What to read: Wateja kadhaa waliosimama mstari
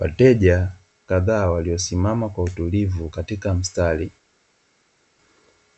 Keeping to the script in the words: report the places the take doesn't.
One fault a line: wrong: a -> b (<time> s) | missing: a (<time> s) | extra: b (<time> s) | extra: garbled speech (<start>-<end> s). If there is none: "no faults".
extra: kwa utulivu katika (2.3 s)